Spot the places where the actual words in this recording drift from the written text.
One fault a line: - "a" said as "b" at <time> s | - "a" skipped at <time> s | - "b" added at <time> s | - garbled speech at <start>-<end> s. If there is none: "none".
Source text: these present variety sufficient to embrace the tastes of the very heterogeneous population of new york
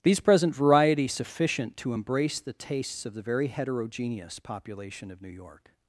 none